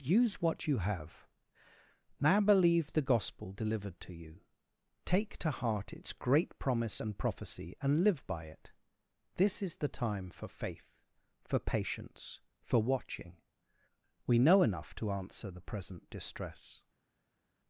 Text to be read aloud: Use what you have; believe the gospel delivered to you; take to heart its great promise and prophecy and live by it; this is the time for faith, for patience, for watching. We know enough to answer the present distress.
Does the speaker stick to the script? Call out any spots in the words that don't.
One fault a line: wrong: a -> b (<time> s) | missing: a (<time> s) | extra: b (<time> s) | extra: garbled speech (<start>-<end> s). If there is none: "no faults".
extra: now (2.2 s)